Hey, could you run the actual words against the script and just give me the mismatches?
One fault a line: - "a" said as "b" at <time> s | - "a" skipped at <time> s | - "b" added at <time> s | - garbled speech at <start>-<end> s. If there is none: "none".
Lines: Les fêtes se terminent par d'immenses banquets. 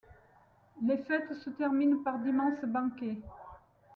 none